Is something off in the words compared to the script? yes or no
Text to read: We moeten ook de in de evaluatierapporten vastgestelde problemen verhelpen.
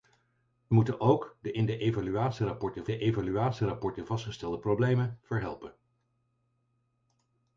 yes